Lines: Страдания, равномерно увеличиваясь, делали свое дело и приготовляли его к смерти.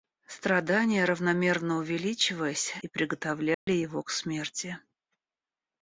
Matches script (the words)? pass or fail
fail